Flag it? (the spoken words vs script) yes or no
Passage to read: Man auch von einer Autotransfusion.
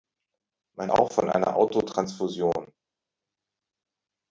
no